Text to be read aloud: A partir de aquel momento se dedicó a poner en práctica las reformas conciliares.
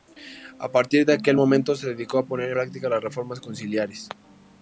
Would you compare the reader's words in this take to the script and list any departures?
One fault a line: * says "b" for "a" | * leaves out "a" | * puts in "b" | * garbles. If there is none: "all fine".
* leaves out "en"